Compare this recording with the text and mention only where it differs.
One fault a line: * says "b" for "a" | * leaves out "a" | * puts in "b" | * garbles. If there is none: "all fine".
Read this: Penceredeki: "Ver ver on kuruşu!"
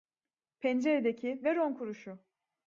* leaves out "ver"